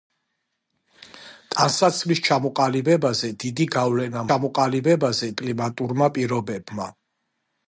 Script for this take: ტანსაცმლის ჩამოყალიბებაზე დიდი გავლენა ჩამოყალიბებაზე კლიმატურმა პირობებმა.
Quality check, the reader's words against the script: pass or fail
pass